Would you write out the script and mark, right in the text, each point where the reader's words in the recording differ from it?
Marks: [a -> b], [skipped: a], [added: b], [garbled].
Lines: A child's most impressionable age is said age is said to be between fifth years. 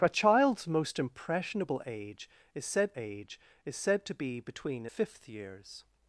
A child's most impressionable age is said age is said to be between fifth years.